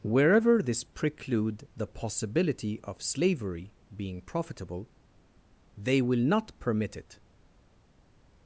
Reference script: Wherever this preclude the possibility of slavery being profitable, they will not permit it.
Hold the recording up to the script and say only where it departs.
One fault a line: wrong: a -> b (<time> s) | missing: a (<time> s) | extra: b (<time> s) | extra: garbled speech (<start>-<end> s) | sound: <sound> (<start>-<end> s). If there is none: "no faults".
no faults